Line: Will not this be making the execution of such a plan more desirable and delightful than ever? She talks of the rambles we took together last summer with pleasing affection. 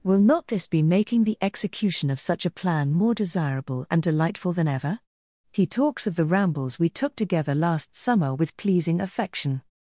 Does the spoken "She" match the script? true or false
false